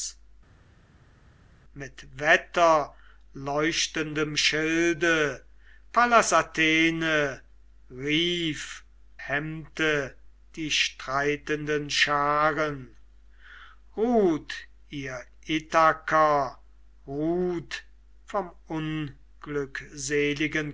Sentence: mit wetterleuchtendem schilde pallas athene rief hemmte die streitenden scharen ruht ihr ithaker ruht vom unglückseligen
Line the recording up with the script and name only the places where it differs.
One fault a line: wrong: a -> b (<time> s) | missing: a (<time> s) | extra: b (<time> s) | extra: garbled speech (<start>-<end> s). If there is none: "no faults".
no faults